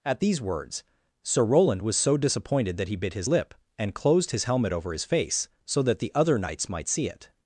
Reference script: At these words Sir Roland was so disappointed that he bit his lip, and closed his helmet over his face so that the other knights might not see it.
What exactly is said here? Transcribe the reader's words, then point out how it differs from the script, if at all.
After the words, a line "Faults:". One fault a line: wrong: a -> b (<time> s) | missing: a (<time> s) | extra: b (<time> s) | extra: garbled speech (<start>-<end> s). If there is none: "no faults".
At these words Sir Roland was so disappointed that he bit his lip, and closed his helmet over his face so that the other knights might see it.
Faults:
missing: not (6.9 s)